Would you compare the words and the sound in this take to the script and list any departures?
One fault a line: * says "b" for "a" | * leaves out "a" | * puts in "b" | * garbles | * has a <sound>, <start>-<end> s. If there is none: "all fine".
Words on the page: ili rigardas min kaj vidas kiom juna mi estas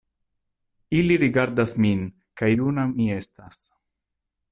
* leaves out "vidas kiom"